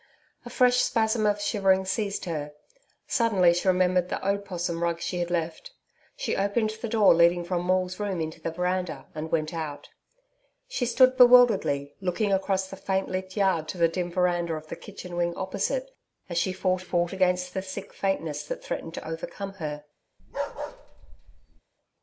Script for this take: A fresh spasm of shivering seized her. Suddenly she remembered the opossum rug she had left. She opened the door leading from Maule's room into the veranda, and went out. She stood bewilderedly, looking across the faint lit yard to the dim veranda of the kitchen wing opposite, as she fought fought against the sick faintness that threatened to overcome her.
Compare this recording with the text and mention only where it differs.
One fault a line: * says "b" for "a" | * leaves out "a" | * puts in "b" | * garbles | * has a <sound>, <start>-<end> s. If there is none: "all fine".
* has a bark, 20.2-21.6 s